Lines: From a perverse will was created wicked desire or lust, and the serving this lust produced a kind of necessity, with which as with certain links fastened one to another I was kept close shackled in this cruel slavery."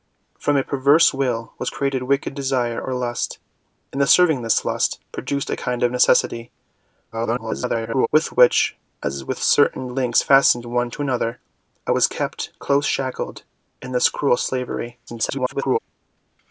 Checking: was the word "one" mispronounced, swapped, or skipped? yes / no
no